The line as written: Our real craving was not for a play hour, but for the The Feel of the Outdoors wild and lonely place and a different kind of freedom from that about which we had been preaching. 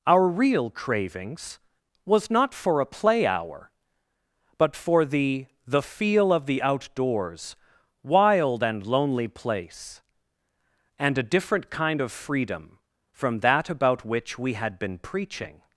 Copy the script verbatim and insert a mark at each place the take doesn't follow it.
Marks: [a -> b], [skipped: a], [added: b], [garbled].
Our real [craving -> cravings] was not for a play hour, but for the The Feel of the Outdoors wild and lonely place and a different kind of freedom from that about which we had been preaching.